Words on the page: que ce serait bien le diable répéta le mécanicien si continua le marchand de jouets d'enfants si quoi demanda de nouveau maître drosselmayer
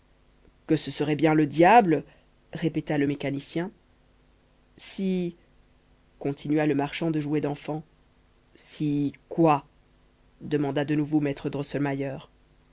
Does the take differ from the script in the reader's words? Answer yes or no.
no